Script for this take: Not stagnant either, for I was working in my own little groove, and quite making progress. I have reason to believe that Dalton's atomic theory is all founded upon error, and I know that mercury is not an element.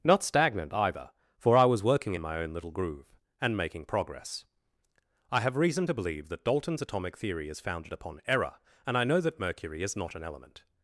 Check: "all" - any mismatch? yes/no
yes